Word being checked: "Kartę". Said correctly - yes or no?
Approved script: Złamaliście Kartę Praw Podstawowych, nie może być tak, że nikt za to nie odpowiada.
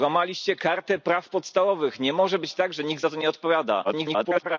yes